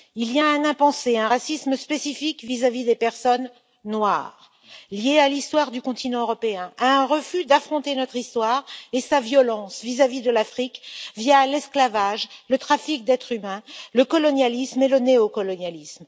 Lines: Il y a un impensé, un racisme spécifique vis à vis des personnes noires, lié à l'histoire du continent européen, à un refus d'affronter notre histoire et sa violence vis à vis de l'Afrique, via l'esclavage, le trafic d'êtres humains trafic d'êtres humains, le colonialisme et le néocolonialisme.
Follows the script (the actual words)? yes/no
no